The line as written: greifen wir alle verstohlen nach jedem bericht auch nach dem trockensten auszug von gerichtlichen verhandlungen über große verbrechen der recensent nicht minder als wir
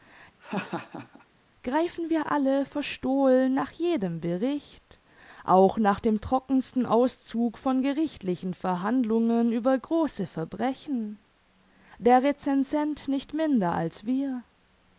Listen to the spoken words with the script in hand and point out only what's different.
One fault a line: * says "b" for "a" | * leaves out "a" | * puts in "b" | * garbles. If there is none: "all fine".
all fine